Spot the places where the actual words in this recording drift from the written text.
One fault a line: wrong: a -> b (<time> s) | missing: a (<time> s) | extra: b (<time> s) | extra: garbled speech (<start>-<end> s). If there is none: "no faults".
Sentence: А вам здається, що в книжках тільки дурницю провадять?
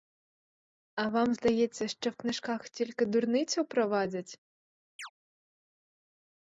no faults